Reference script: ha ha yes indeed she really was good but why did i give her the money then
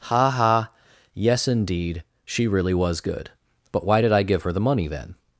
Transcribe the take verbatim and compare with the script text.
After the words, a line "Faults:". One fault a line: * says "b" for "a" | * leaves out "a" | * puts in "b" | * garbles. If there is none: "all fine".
ha ha yes indeed she really was good but why did i give her the money then
Faults:
all fine